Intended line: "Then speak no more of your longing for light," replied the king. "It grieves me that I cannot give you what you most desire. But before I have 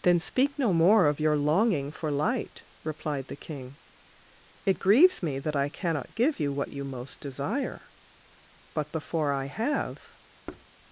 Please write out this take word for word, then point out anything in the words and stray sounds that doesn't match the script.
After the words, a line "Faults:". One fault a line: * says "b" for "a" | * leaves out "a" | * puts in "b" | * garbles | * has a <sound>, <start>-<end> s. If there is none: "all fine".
"Then speak no more of your longing for light," replied the king. "It grieves me that I cannot give you what you most desire. But before I have
Faults:
* has a thud, 10.5-10.7 s